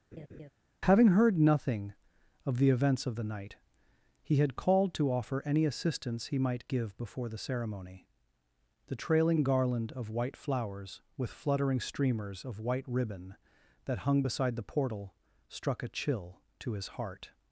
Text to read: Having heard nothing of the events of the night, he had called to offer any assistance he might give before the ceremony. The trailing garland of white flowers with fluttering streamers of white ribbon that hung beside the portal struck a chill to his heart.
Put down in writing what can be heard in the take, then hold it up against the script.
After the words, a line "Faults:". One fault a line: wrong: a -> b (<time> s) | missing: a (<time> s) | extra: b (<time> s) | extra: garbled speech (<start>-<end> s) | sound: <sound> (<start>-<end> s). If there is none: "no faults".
Having heard nothing of the events of the night, he had called to offer any assistance he might give before the ceremony. The trailing garland of white flowers with fluttering streamers of white ribbon that hung beside the portal struck a chill to his heart.
Faults:
sound: laugh (0.1-0.5 s)